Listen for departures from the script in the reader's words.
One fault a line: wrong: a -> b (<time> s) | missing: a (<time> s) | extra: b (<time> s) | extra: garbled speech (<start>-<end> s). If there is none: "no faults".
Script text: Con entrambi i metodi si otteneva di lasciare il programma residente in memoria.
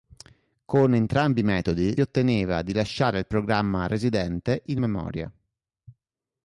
missing: si (1.9 s)